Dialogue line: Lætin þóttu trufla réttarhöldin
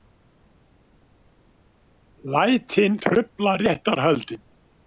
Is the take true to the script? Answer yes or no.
no